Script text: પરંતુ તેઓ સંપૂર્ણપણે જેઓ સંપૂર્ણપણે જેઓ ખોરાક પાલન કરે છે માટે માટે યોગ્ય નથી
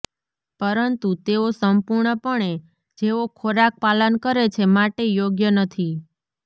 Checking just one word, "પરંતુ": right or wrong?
right